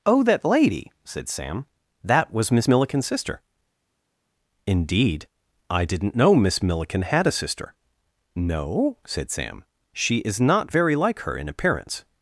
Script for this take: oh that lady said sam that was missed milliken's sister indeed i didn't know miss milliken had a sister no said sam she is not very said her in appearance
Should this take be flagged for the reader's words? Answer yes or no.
yes